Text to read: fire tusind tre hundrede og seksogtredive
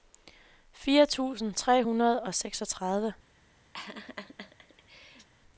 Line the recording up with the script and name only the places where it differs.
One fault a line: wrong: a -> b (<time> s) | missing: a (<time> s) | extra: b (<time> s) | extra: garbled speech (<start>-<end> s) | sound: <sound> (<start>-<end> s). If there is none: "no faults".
sound: laugh (3.7-5.3 s)